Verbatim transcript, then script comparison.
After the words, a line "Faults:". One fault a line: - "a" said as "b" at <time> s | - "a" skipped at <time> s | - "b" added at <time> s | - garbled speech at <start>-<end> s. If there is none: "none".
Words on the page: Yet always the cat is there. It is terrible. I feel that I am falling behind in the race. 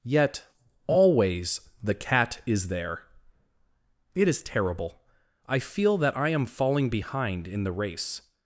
Yet always the cat is there. It is terrible. I feel that I am falling behind in the race.
Faults:
none